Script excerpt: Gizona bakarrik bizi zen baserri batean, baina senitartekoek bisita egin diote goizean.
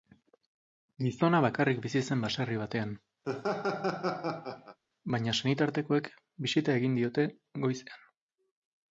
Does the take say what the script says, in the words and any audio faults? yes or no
no